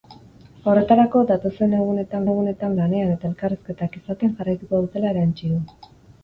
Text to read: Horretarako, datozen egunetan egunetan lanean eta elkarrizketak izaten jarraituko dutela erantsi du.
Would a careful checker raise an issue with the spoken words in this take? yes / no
no